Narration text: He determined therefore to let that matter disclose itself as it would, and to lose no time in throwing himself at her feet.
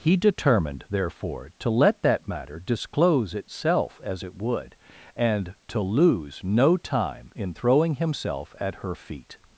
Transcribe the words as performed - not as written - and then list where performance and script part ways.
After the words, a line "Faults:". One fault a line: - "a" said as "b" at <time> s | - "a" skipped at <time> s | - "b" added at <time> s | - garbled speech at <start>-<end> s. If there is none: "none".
He determined therefore to let that matter disclose itself as it would, and to lose no time in throwing himself at her feet.
Faults:
none